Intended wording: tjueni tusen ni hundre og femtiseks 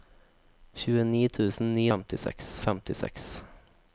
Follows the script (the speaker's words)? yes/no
no